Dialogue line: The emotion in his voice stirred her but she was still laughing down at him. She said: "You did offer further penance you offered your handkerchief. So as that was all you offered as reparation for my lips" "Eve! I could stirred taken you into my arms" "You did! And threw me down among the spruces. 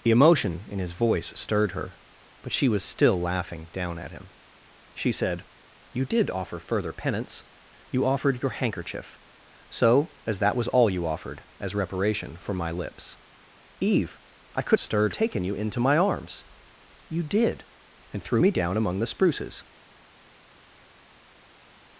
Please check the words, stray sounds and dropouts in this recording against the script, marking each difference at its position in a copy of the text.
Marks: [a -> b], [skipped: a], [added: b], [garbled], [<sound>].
The emotion in his voice stirred her but she was still laughing down at him. She said: "You did offer further penance you offered your handkerchief. So as that was all you offered as reparation for my lips" "Eve! I could stirred taken you into my arms" "You did! And threw me down among the spruces.